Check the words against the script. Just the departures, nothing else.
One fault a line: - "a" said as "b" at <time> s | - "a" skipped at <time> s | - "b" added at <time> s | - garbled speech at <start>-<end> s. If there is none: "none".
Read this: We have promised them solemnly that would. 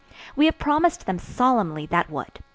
none